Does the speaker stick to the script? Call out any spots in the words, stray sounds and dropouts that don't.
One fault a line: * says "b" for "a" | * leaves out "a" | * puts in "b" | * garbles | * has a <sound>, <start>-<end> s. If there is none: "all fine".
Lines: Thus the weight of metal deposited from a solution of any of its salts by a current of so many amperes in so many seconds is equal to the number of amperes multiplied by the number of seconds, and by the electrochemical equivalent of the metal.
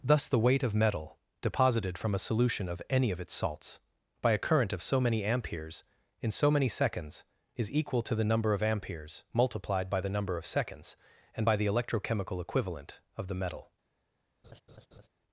* has a laugh, 14.4-15.1 s